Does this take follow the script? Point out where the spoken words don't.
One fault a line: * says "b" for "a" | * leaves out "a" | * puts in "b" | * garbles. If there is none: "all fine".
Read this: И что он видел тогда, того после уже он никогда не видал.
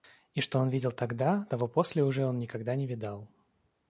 all fine